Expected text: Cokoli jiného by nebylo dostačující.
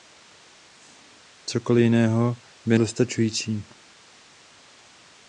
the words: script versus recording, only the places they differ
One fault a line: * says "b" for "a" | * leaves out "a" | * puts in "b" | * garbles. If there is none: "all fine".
* leaves out "nebylo"